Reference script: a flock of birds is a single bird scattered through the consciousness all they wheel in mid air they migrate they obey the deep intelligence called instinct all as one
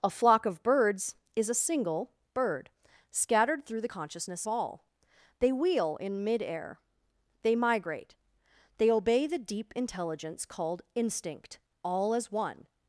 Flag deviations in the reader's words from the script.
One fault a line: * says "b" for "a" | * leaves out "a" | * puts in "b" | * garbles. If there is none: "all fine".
all fine